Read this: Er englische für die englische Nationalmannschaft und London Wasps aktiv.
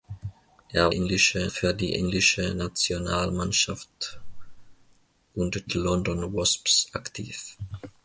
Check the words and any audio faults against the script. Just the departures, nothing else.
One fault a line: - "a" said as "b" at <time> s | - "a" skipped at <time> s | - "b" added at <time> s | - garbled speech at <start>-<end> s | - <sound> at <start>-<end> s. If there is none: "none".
none